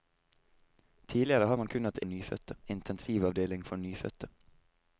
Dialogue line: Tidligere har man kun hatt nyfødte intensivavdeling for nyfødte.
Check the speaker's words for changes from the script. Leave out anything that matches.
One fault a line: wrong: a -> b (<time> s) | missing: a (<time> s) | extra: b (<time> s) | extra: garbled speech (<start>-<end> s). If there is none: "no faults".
no faults